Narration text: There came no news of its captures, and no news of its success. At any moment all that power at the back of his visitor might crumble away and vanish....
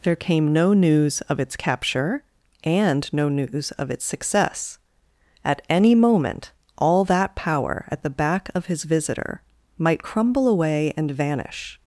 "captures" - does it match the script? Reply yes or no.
no